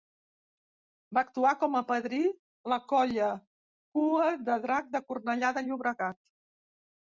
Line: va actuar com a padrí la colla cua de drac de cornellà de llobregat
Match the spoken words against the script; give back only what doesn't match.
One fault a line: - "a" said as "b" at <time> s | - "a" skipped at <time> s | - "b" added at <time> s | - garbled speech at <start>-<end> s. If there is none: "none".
none